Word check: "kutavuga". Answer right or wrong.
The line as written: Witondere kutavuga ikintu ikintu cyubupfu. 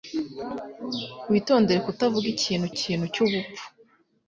right